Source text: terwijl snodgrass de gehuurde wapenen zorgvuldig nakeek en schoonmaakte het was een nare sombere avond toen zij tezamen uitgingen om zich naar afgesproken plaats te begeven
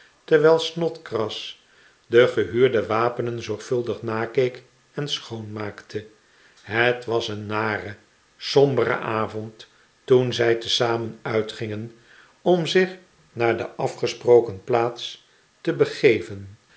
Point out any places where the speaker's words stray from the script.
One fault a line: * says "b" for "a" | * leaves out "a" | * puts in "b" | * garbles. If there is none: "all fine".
* puts in "de"